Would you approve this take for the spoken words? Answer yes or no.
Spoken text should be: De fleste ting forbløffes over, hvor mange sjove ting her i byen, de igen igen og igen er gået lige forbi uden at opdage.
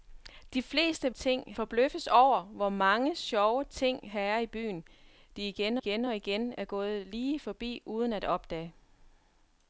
yes